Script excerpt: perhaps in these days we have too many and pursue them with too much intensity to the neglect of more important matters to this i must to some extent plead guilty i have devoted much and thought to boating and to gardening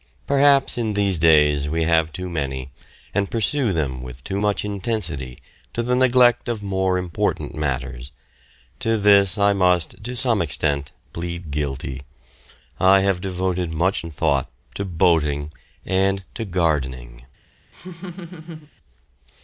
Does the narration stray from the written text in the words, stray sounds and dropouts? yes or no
yes